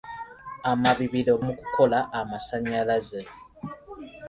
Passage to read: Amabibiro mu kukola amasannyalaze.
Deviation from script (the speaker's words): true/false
false